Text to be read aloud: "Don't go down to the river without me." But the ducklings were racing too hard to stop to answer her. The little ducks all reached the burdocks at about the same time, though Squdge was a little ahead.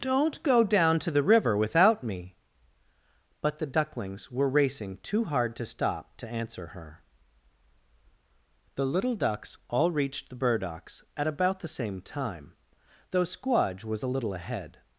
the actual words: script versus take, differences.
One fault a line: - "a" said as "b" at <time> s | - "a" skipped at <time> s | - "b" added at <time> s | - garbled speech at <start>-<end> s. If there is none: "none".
none